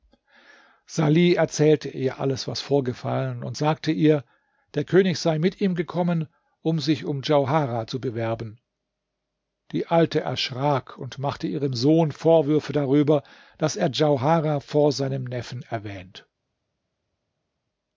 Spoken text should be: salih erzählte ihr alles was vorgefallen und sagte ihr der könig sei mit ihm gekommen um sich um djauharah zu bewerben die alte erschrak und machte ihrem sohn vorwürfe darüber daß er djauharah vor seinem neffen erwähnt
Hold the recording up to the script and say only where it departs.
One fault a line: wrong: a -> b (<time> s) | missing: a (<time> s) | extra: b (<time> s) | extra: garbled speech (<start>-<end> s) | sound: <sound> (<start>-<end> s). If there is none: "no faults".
no faults